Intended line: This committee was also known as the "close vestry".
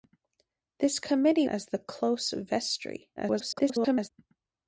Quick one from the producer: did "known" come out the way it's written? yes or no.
no